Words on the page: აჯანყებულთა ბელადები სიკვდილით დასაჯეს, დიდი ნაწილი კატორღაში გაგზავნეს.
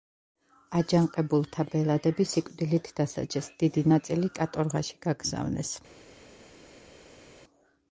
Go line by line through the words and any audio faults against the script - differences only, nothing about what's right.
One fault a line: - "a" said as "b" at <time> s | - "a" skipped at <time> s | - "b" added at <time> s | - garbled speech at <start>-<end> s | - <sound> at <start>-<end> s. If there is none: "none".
none